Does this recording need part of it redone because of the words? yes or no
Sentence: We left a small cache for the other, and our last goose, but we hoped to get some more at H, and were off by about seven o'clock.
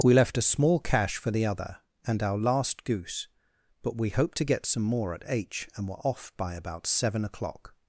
no